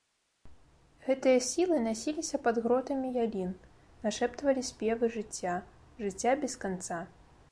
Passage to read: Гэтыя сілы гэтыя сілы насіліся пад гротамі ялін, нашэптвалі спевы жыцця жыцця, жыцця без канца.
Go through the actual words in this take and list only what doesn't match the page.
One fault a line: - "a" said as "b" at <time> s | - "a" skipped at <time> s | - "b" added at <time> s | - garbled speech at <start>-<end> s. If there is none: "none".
- "гэтыя сілы" skipped at 1.8 s
- "жыцця" skipped at 6.3 s